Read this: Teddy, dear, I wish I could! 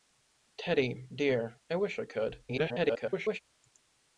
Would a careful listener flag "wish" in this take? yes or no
no